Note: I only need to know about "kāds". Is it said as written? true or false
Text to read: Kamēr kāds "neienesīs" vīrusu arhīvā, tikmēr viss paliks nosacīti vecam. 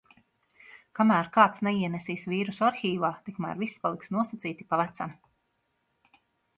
true